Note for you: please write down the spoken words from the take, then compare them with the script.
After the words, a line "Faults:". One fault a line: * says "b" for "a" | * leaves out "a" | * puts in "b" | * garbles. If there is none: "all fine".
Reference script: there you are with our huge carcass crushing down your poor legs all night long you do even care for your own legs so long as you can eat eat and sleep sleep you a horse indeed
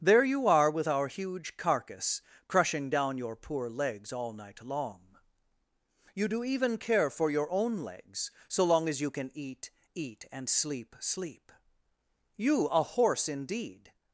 there you are with our huge carcass crushing down your poor legs all night long you do even care for your own legs so long as you can eat eat and sleep sleep you a horse indeed
Faults:
all fine